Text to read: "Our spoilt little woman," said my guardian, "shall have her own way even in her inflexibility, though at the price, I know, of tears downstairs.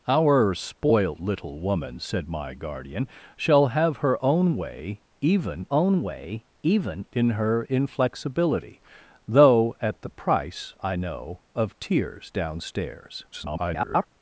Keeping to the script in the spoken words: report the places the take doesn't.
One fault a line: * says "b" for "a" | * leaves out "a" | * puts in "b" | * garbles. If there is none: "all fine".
* puts in "own way even"
* garbles